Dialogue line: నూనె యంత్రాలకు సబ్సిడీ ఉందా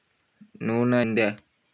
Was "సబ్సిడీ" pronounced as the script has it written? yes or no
no